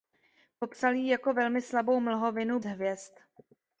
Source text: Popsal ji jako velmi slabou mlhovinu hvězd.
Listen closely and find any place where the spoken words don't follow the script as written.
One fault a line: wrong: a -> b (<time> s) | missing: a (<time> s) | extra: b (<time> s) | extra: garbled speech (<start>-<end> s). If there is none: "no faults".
no faults